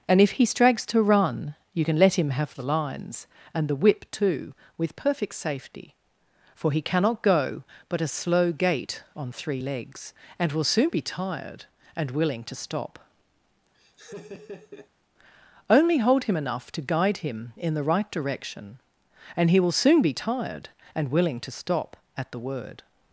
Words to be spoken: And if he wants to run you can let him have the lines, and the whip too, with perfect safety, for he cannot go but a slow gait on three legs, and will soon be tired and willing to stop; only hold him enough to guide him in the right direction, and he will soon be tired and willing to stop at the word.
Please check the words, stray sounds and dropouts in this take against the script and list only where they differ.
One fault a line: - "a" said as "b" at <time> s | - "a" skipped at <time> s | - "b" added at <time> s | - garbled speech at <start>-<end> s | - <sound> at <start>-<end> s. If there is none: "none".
- "wants" said as "strags" at 0.5 s
- laugh at 13.7-14.9 s